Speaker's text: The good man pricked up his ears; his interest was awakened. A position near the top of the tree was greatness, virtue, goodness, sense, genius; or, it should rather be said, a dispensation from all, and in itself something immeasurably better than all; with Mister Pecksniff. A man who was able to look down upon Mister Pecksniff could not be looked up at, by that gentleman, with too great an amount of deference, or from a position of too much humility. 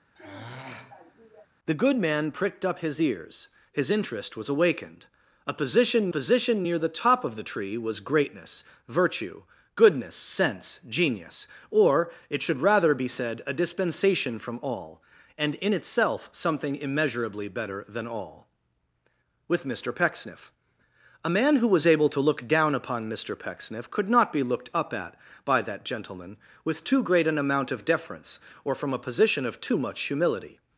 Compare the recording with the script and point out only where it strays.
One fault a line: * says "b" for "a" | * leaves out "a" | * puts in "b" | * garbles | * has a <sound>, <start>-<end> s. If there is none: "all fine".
* has a sigh, 0.2-1.5 s
* puts in "position"